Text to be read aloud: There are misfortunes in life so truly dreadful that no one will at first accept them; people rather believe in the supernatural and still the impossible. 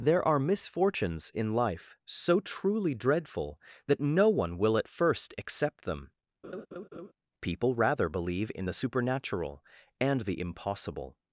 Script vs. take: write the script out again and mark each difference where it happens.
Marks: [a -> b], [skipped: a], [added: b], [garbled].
There are misfortunes in life so truly dreadful that no one will at first accept them; people rather believe in the supernatural and [skipped: still] the impossible.